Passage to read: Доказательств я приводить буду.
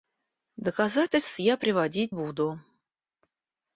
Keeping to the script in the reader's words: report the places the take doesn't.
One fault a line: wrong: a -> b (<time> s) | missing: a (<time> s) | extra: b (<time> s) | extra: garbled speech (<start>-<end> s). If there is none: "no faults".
no faults